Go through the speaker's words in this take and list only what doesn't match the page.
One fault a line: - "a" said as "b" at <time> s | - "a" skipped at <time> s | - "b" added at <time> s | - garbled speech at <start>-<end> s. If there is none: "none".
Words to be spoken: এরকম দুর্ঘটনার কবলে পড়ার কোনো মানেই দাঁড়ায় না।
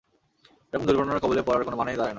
none